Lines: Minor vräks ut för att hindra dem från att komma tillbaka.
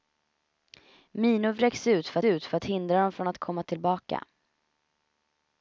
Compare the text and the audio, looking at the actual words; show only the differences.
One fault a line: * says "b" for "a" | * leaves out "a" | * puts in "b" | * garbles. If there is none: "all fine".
* puts in "ut för"